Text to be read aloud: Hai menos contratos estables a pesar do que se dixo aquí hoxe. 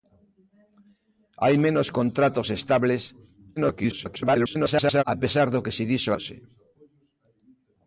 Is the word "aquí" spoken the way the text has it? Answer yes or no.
no